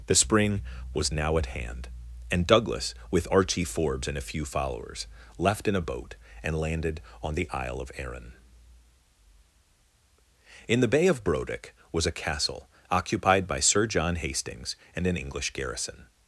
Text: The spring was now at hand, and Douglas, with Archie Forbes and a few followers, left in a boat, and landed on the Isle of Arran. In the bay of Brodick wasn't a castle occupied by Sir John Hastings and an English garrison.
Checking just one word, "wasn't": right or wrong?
wrong